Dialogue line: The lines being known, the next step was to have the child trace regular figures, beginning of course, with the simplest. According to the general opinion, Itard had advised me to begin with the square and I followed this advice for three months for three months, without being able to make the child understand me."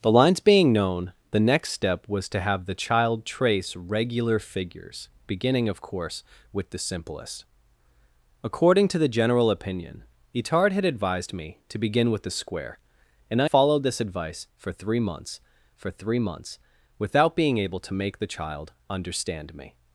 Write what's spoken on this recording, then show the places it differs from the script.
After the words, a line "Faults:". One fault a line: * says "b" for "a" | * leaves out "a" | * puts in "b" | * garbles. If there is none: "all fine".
The lines being known, the next step was to have the child trace regular figures, beginning of course, with the simplest. According to the general opinion, Itard had advised me to begin with the square and I followed this advice for three months for three months, without being able to make the child understand me."
Faults:
all fine